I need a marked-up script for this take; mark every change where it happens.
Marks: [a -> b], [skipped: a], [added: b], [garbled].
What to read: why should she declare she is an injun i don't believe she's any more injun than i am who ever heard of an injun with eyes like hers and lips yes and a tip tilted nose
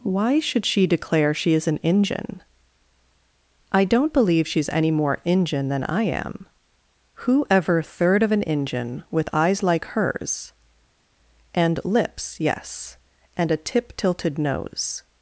why should she declare she is an injun i don't believe she's any more injun than i am who ever [heard -> third] of an injun with eyes like hers and lips yes and a tip tilted nose